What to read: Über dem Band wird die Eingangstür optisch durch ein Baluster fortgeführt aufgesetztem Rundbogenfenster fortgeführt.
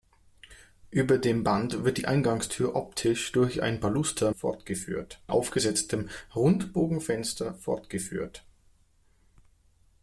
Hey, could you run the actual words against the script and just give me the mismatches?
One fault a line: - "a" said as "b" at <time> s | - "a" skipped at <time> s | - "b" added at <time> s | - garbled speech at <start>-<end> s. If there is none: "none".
none